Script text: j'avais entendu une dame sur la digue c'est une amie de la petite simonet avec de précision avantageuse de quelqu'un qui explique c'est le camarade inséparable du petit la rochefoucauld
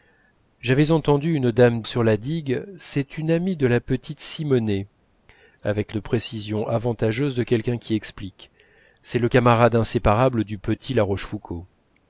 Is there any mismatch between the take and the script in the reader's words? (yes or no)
no